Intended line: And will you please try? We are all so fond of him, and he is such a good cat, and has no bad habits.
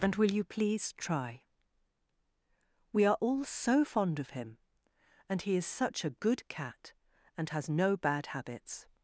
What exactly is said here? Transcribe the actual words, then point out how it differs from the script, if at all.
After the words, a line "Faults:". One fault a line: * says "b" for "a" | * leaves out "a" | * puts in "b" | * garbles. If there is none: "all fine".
And will you please try? We are all so fond of him, and he is such a good cat, and has no bad habits.
Faults:
all fine